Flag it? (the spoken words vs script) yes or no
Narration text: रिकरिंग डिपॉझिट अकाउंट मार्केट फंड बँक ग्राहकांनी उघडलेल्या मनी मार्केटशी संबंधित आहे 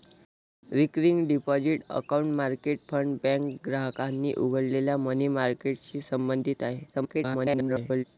yes